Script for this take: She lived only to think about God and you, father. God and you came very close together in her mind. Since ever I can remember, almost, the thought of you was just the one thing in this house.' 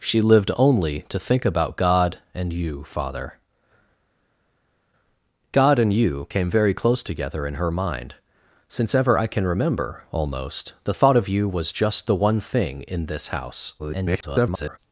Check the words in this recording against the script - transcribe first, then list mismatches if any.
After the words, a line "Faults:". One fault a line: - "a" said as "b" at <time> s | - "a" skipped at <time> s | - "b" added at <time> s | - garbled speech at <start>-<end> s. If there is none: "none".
She lived only to think about God and you, father. God and you came very close together in her mind. Since ever I can remember, almost, the thought of you was just the one thing in this house.' [garbled]
Faults:
- garbled speech at 13.8-14.8 s